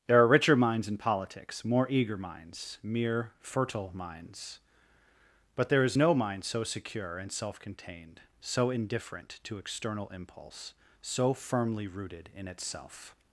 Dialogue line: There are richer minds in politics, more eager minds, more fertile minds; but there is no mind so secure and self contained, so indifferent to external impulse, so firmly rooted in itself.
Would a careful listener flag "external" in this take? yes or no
no